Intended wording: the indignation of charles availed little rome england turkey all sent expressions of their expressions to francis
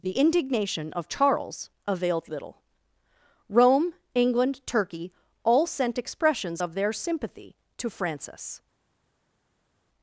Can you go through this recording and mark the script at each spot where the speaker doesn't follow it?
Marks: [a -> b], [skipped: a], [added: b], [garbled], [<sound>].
the indignation of charles availed little rome england turkey all sent expressions of their [expressions -> sympathy] to francis